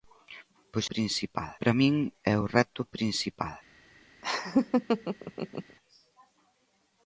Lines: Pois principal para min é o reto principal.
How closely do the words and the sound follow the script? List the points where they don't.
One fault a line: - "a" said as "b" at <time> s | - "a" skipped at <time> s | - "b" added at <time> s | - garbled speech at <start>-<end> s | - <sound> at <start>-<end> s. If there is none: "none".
- laugh at 4.2-5.8 s